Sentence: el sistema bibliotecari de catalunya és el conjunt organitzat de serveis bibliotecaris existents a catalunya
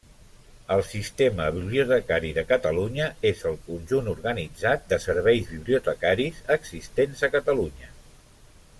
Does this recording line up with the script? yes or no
yes